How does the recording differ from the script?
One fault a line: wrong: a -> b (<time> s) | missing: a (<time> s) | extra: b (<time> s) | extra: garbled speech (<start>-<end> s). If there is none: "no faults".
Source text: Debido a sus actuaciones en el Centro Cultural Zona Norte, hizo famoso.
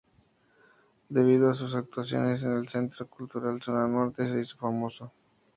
extra: se (4.3 s)